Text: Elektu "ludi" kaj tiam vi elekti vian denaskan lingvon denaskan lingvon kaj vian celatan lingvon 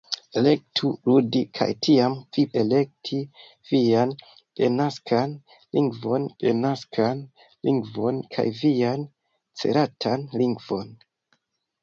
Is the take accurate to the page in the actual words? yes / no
yes